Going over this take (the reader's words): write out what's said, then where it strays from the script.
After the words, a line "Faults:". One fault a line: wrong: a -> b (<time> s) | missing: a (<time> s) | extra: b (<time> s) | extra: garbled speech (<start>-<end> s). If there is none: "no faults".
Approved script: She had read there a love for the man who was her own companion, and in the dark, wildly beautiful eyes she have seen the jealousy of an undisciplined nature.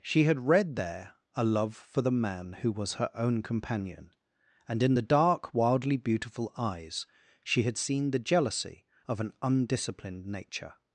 She had read there a love for the man who was her own companion, and in the dark, wildly beautiful eyes she had seen the jealousy of an undisciplined nature.
Faults:
wrong: have -> had (7.6 s)